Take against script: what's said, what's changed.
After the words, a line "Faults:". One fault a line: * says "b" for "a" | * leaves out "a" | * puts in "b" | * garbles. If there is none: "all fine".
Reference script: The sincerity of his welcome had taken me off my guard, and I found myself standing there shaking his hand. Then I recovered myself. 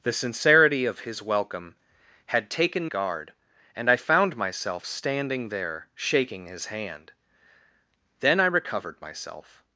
The sincerity of his welcome had taken guard, and I found myself standing there shaking his hand. Then I recovered myself.
Faults:
* leaves out "me off my"